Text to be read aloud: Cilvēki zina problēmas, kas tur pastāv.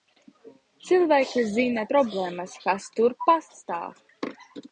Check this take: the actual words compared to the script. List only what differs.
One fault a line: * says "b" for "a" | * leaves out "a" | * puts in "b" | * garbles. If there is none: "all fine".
all fine